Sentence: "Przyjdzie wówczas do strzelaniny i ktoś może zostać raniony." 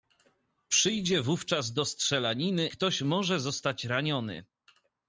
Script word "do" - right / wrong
right